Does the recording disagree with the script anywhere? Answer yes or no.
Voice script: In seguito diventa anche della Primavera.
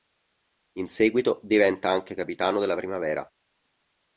yes